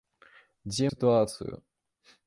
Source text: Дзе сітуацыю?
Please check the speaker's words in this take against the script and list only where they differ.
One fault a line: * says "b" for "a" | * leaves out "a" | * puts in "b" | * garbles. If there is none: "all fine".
all fine